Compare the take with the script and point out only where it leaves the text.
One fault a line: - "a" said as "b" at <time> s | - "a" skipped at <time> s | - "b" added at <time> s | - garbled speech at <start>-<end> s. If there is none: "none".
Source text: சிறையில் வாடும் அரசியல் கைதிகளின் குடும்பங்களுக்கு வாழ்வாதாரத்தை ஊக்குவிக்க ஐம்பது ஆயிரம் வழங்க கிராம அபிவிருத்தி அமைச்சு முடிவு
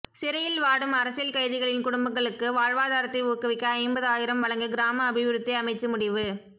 none